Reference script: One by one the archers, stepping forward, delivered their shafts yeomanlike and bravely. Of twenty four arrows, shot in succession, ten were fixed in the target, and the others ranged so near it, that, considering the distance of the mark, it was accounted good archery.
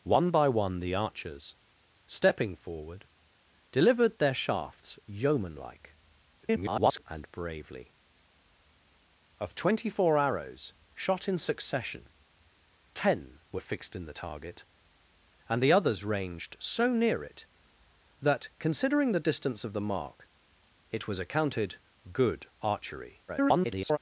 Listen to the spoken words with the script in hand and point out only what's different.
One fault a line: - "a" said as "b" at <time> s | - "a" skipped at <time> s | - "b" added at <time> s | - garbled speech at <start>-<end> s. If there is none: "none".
- garbled speech at 6.4-7.0 s
- garbled speech at 23.3-24.0 s